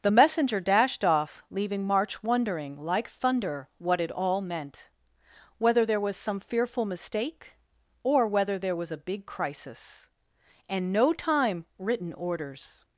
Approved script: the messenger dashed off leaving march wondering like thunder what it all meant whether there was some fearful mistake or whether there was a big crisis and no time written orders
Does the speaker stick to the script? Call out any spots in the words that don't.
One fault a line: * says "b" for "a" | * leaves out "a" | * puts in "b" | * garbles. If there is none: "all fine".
all fine